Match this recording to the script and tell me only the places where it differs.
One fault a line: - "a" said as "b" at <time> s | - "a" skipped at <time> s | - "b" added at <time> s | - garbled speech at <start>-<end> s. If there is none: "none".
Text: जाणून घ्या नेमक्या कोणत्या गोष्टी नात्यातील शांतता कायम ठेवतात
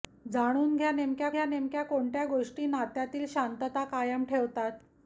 - "घ्या नेमक्या" added at 1.3 s